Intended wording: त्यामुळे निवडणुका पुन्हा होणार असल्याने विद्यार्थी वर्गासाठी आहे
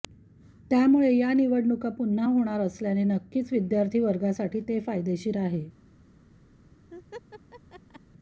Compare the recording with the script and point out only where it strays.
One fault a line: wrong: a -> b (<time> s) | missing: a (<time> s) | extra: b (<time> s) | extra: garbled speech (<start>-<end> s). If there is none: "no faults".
extra: या (1.1 s)
extra: नक्कीच (3.1 s)
extra: ते फायदेशीर (4.6 s)